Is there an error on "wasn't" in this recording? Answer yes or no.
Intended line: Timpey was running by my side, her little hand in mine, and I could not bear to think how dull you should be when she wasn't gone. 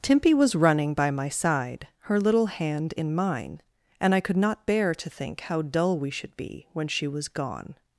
yes